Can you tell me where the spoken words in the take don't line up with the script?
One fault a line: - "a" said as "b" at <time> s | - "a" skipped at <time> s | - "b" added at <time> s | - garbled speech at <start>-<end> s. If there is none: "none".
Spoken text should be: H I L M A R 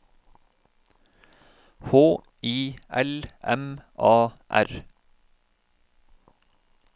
none